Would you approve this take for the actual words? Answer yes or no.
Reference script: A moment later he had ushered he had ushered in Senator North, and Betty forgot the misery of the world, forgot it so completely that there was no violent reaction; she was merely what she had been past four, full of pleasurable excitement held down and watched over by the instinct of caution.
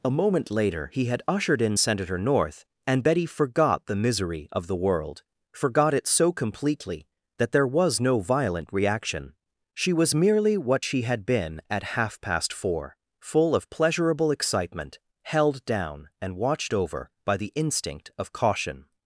no